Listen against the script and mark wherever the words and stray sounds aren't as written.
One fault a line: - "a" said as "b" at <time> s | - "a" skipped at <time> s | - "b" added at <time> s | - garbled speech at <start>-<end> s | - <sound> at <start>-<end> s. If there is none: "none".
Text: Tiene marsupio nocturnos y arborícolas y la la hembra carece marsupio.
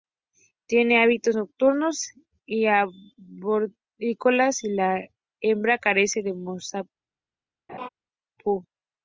- "marsupio" said as "hábitos" at 1.0 s
- "la" skipped at 5.0 s
- "de" added at 6.2 s
- laugh at 7.7-7.9 s